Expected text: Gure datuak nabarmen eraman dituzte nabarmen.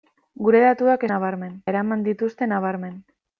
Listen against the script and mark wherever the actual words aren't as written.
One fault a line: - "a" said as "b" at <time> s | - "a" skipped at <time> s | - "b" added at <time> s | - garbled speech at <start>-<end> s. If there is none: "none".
none